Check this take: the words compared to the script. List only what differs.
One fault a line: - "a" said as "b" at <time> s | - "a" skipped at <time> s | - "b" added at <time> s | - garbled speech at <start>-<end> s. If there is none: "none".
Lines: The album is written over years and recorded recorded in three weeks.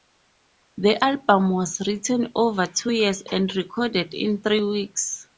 - "is" said as "was" at 1.5 s
- "two" added at 2.7 s
- "recorded" skipped at 4.1 s